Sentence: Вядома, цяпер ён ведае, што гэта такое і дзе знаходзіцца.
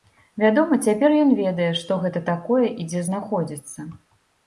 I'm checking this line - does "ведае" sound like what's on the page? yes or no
yes